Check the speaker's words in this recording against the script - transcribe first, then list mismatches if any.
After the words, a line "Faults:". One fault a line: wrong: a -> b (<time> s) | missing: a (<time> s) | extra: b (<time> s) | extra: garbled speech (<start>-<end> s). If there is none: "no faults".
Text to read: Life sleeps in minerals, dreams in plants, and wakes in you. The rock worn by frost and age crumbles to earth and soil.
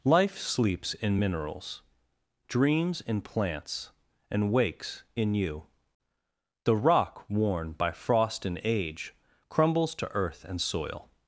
Life sleeps in minerals, dreams in plants, and wakes in you. The rock worn by frost and age crumbles to earth and soil.
Faults:
no faults